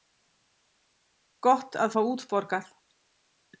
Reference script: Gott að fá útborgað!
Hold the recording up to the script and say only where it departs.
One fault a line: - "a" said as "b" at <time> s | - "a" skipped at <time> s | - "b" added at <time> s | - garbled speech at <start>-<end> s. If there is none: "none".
none